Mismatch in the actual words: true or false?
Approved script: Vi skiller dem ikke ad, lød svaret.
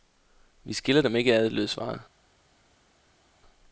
false